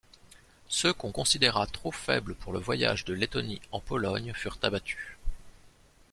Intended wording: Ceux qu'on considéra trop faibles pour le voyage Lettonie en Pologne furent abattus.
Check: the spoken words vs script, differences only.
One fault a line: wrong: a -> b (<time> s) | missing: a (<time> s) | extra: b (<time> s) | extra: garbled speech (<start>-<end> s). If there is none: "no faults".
extra: de (3.0 s)